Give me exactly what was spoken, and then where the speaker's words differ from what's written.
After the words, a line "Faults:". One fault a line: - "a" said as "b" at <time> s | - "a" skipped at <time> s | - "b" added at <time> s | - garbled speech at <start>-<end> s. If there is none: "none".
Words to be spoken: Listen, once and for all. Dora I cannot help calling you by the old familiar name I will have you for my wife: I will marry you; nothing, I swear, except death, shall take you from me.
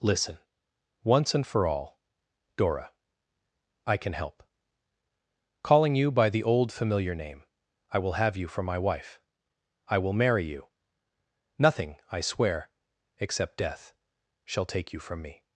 Listen, once and for all. Dora I can help calling you by the old familiar name I will have you for my wife: I will marry you; nothing, I swear, except death, shall take you from me.
Faults:
- "cannot" said as "can" at 4.0 s